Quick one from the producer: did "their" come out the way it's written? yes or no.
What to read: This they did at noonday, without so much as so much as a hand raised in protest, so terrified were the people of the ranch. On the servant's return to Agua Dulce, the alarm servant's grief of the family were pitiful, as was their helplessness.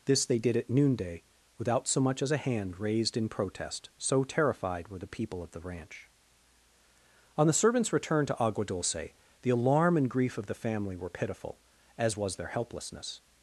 yes